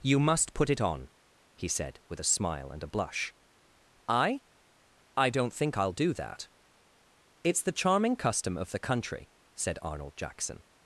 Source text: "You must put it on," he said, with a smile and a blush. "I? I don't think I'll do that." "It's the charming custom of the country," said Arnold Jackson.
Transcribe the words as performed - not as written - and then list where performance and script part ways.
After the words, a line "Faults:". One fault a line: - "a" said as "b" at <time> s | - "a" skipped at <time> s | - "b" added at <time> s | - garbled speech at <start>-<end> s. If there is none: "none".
"You must put it on," he said, with a smile and a blush. "I? I don't think I'll do that." "It's the charming custom of the country," said Arnold Jackson.
Faults:
none